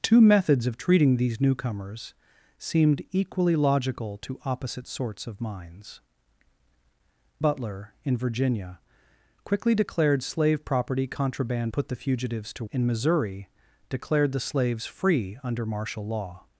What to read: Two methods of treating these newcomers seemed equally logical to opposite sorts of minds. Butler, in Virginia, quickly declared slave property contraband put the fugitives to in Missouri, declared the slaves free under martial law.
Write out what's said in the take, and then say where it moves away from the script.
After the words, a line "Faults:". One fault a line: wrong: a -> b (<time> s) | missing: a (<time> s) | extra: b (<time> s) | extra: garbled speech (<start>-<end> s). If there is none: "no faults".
Two methods of treating these newcomers seemed equally logical to opposite sorts of minds. Butler, in Virginia, quickly declared slave property contraband put the fugitives to in Missouri, declared the slaves free under martial law.
Faults:
no faults